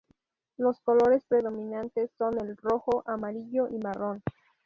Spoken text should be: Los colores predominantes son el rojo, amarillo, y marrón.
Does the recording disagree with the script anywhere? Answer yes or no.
no